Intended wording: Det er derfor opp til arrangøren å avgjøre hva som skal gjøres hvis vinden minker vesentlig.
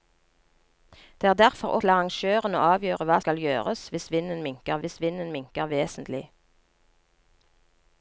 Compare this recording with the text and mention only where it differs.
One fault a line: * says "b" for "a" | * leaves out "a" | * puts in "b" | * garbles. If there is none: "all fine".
* leaves out "opp"
* leaves out "som"
* puts in "hvis vinden minker"